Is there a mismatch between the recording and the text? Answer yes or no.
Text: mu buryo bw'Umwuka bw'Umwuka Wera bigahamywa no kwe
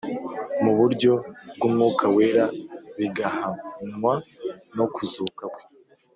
yes